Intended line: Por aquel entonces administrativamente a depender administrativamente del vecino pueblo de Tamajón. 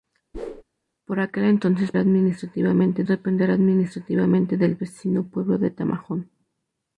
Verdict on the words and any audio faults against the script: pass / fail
fail